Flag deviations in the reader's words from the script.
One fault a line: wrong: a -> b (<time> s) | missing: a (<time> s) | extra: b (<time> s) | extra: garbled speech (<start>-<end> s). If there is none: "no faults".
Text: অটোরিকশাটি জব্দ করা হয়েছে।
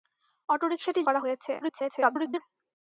missing: জব্দ (1.0 s)
extra: garbled speech (1.6-2.4 s)